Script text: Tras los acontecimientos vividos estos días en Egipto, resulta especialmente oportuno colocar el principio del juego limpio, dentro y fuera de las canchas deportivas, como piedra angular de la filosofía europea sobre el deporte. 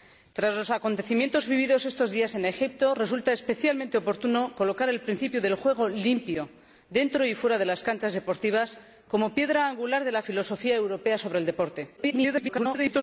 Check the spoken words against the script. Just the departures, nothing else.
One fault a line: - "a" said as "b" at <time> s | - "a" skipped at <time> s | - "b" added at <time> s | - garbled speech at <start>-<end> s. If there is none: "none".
- garbled speech at 12.0-13.0 s